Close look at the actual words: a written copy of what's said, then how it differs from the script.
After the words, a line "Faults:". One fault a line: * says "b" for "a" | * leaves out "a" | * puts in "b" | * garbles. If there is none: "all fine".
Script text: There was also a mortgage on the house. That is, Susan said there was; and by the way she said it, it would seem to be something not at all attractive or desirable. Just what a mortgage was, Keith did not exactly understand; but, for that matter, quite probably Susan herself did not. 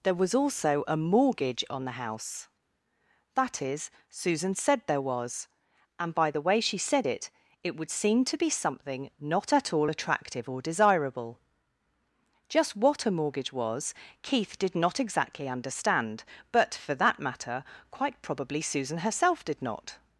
There was also a mortgage on the house. That is, Susan said there was; and by the way she said it, it would seem to be something not at all attractive or desirable. Just what a mortgage was, Keith did not exactly understand; but, for that matter, quite probably Susan herself did not.
Faults:
all fine